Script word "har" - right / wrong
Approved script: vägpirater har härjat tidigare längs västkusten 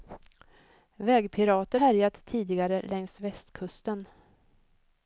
wrong